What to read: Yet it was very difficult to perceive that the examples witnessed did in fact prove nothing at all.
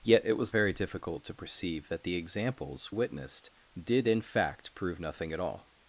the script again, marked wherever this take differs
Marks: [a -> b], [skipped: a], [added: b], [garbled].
Yet it was very difficult to perceive that the examples witnessed did in fact prove nothing at all.